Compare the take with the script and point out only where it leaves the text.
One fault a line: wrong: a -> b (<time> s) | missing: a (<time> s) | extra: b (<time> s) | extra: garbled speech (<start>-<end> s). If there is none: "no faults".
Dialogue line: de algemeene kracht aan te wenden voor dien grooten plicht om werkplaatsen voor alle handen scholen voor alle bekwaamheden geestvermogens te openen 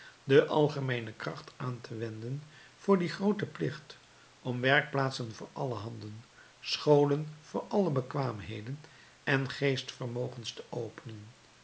extra: en (9.2 s)